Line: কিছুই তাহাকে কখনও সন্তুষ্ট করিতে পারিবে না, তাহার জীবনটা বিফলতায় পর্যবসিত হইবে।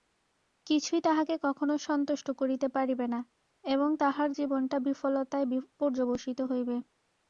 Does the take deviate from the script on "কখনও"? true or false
false